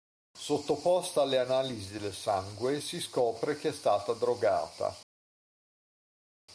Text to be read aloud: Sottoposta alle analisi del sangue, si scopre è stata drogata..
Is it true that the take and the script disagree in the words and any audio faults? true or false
true